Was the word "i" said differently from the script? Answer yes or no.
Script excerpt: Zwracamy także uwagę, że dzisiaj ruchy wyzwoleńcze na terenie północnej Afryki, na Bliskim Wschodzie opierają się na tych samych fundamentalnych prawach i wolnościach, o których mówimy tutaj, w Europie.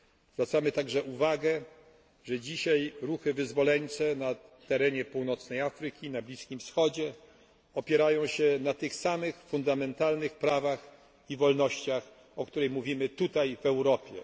no